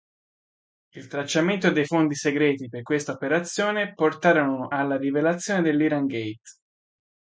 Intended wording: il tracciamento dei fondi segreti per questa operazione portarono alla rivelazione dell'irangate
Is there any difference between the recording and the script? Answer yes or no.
no